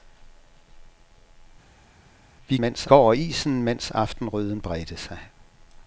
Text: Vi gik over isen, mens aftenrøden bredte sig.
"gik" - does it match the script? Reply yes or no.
no